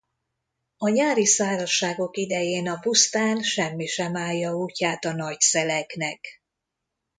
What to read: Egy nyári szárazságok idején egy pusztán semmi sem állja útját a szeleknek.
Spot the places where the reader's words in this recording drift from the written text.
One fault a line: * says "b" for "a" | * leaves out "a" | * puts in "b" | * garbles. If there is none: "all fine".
* says "A" for "Egy"
* says "a" for "egy"
* puts in "nagy"